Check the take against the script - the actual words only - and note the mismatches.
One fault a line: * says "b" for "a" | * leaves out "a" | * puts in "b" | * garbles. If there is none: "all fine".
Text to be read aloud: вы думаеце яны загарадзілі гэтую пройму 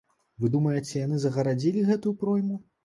all fine